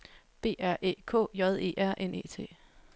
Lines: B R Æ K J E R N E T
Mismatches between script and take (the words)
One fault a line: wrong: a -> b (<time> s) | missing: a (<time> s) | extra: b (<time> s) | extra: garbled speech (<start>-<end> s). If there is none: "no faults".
no faults